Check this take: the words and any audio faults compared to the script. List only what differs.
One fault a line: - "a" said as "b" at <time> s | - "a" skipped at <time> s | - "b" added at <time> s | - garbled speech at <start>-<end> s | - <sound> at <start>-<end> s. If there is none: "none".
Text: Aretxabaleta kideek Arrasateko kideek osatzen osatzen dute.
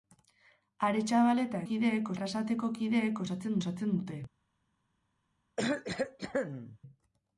- cough at 5.6-6.8 s